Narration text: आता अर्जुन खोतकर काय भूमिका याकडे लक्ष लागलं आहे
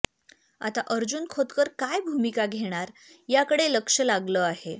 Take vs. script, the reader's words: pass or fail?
fail